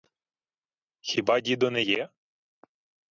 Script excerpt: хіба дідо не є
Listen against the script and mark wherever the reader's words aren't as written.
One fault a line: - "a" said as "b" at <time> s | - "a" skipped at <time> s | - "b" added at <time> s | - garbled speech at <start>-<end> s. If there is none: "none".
none